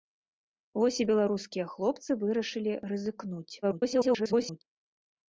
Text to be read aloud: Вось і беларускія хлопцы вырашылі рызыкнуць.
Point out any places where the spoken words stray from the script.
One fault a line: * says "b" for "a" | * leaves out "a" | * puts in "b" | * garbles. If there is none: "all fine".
* garbles